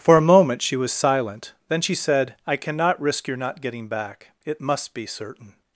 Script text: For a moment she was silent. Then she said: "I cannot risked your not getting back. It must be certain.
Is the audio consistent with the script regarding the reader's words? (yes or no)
no